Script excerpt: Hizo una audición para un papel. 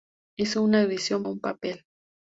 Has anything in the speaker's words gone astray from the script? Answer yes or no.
yes